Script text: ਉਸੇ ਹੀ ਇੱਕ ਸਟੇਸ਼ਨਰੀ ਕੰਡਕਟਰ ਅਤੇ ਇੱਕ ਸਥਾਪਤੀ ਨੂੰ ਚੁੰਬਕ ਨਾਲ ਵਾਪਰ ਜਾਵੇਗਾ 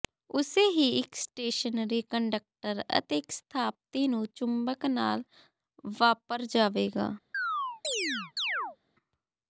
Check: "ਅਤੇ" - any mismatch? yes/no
no